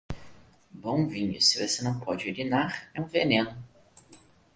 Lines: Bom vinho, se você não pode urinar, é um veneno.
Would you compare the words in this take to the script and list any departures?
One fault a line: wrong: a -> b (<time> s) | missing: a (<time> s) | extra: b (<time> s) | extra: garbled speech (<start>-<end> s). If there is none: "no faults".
no faults